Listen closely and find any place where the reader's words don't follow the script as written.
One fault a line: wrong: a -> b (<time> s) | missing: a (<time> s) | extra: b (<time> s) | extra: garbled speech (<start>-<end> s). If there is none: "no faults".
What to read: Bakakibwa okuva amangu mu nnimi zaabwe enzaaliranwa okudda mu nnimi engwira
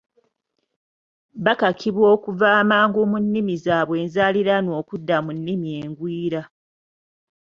no faults